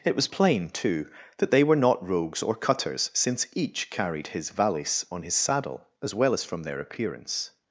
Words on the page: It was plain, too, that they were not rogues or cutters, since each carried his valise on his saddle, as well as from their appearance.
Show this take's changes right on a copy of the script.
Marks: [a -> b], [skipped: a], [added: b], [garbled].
It was plain, too, that they were not rogues or cutters, since each carried his valise on his saddle, as well as from their appearance.